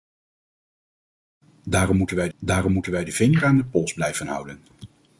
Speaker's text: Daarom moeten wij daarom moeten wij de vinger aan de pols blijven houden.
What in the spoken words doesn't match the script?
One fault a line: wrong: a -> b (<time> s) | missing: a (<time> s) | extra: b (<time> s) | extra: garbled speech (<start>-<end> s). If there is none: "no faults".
no faults